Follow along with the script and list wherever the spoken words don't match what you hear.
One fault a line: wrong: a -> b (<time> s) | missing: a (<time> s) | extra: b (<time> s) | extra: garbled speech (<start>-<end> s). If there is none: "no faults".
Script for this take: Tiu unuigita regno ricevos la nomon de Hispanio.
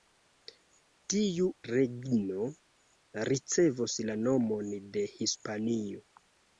missing: unuigita (1.5 s)